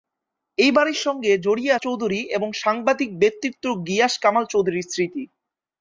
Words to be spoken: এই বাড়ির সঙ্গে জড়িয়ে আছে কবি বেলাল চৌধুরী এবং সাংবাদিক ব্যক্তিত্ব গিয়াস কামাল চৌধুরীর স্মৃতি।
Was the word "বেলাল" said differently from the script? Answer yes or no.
yes